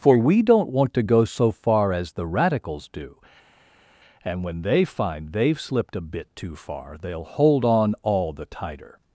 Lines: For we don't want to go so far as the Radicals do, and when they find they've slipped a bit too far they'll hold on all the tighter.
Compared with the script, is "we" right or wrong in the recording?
right